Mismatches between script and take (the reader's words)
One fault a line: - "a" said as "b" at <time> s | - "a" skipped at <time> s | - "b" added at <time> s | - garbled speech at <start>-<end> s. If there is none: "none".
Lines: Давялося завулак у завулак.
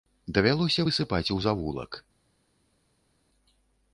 - "завулак" said as "высыпаць" at 0.9 s